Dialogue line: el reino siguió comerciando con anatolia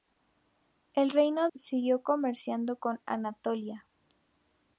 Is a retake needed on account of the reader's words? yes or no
no